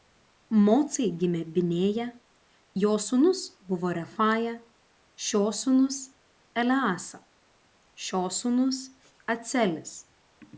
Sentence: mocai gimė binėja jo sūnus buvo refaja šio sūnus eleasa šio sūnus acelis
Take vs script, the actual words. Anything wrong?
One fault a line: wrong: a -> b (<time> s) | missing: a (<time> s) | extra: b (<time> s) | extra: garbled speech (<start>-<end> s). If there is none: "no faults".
no faults